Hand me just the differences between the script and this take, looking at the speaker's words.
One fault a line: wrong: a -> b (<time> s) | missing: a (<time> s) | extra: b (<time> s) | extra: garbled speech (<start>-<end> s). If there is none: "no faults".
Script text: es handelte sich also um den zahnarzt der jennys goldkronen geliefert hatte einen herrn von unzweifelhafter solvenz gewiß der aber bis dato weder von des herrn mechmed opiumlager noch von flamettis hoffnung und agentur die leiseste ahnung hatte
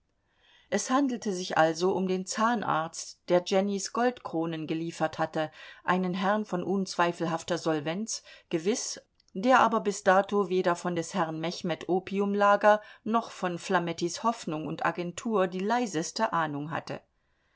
no faults